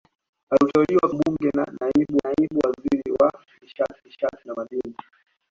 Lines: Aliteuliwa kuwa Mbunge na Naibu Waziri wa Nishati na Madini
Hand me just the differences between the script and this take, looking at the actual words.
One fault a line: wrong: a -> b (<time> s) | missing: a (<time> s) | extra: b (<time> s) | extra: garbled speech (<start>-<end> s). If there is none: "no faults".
missing: kuwa (1.1 s)
extra: Naibu (2.2 s)
extra: Nishati (4.0 s)